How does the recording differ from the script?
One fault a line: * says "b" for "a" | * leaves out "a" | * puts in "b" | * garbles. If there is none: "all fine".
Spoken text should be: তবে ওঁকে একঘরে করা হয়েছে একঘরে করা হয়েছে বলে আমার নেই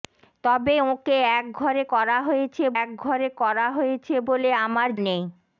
all fine